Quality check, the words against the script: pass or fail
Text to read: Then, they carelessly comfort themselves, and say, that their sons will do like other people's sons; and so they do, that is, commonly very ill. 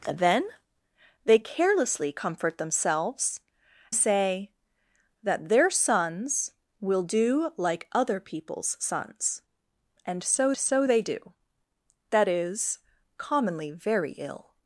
fail